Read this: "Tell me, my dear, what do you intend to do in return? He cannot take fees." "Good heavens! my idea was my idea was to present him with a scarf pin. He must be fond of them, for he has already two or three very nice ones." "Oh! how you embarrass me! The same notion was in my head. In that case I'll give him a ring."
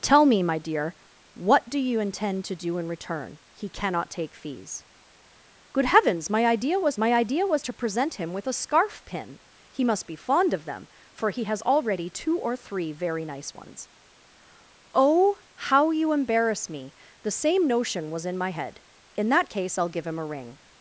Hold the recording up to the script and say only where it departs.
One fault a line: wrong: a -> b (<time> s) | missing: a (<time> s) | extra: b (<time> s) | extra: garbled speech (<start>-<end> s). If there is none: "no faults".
no faults